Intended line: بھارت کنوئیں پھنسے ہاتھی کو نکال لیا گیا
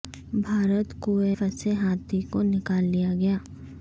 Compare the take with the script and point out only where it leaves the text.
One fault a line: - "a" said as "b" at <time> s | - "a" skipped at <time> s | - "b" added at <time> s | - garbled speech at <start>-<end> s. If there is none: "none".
none